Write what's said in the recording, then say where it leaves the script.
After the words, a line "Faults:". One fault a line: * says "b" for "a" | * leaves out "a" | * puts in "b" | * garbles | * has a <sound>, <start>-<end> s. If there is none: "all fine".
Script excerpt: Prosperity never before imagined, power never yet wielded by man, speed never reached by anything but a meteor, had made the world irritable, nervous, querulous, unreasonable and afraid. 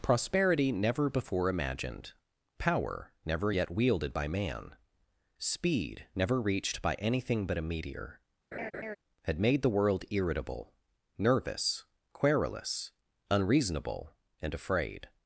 Prosperity never before imagined, power never yet wielded by man, speed never reached by anything but a meteor, had made the world irritable, nervous, querulous, unreasonable and afraid.
Faults:
* has a laugh, 8.5-9.0 s